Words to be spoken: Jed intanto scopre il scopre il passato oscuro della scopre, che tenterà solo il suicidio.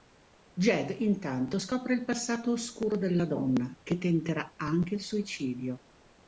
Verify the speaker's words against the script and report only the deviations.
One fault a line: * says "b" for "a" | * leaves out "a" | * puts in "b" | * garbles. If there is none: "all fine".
* leaves out "scopre il"
* says "donna" for "scopre"
* says "anche" for "solo"